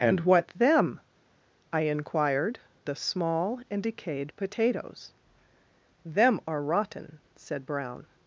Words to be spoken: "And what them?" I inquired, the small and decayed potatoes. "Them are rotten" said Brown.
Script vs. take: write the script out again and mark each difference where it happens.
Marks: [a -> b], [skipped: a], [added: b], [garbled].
"And what them?" I inquired, the small and decayed potatoes. "Them are rotten" said Brown.